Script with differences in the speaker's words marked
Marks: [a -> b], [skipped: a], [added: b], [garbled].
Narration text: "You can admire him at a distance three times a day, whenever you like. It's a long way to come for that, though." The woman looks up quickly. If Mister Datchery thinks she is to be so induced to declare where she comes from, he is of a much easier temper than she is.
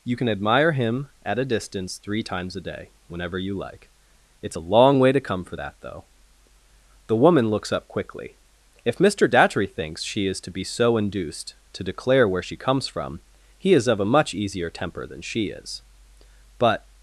"You can admire him at a distance three times a day, whenever you like. It's a long way to come for that, though." The woman looks up quickly. If Mister Datchery thinks she is to be so induced to declare where she comes from, he is of a much easier temper than she is. [added: But]